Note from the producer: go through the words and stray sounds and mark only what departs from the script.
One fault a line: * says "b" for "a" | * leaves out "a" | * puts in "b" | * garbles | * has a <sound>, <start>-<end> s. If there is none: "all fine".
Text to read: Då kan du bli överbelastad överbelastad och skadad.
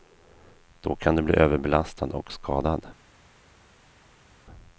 * leaves out "överbelastad"